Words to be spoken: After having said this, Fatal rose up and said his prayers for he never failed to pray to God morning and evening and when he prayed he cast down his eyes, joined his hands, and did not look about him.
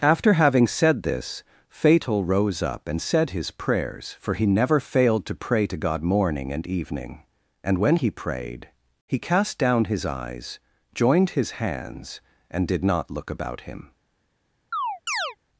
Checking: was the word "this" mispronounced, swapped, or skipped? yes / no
no